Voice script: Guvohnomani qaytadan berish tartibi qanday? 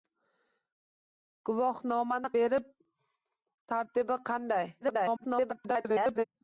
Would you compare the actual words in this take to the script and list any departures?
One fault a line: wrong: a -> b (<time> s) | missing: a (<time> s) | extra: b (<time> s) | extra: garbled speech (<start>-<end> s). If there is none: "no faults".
missing: qaytadan (2.3 s)
extra: garbled speech (4.8-6.2 s)